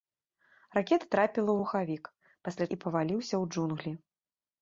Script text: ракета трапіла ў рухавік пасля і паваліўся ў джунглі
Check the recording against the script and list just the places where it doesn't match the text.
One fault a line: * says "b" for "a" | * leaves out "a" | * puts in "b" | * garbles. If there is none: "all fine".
all fine